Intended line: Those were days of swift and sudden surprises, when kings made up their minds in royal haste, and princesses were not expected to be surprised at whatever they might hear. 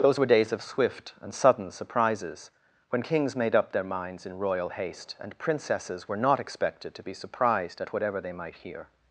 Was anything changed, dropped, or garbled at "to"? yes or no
no